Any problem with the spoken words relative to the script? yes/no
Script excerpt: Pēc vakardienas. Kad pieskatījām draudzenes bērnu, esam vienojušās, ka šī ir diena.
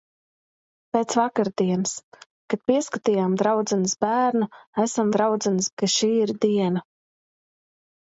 yes